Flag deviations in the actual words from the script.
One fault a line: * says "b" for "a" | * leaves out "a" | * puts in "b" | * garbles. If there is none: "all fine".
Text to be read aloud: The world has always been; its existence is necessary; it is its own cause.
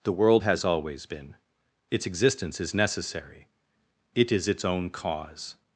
all fine